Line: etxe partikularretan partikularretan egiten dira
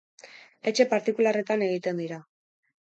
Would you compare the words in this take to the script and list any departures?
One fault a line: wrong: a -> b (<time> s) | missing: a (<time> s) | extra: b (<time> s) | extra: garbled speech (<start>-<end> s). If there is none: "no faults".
missing: partikularretan (1.7 s)